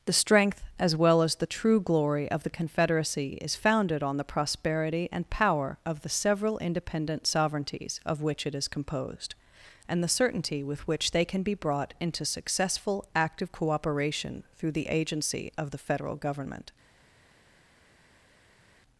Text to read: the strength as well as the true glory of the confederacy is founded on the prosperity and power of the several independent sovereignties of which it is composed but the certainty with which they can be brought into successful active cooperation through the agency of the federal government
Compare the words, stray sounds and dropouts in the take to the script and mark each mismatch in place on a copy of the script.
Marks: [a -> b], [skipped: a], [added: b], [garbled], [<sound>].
the strength as well as the true glory of the confederacy is founded on the prosperity and power of the several independent sovereignties of which it is composed [but -> and] the certainty with which they can be brought into successful active cooperation through the agency of the federal government